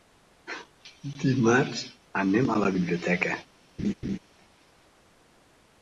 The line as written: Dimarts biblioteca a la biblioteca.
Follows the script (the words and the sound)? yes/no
no